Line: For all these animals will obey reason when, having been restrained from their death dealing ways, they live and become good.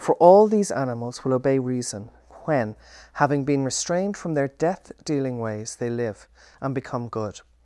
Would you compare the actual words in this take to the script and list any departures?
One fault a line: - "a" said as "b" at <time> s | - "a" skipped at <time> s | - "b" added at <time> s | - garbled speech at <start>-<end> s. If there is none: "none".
none